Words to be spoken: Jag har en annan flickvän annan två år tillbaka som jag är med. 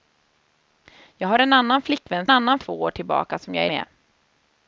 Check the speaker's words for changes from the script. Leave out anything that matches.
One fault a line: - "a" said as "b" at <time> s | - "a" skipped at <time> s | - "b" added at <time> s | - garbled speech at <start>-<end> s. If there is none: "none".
none